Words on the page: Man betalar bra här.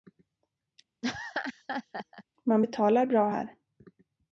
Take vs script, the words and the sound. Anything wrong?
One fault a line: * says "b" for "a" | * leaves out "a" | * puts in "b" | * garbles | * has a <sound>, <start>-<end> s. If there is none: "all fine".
* has a laugh, 1.0-2.2 s